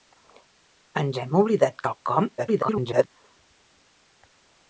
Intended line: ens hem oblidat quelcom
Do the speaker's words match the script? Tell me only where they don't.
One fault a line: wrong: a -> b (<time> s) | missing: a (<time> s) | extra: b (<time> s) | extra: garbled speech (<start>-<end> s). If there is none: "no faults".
extra: garbled speech (2.4-3.1 s)